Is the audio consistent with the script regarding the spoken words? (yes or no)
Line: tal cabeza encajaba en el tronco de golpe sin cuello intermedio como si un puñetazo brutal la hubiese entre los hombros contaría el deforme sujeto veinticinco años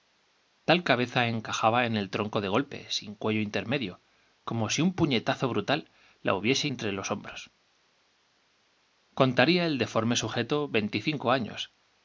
yes